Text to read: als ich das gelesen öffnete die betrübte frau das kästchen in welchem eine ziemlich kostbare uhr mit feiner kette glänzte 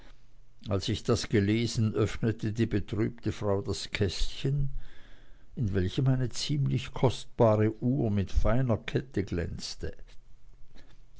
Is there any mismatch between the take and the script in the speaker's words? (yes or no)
no